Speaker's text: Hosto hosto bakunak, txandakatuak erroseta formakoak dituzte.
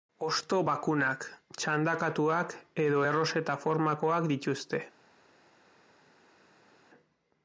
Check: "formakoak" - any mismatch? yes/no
no